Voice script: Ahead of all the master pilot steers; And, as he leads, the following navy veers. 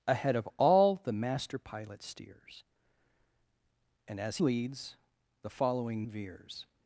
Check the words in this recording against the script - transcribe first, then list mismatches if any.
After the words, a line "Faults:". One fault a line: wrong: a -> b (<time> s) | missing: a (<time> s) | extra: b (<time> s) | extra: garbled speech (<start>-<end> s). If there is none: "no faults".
Ahead of all the master pilot steers; And, as leads, the following veers.
Faults:
missing: he (4.4 s)
missing: navy (6.1 s)